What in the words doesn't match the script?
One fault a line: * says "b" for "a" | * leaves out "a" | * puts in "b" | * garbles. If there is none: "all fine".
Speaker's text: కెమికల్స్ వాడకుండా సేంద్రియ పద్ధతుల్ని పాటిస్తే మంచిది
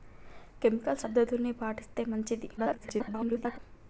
* leaves out "వాడకుండా సేంద్రియ"
* garbles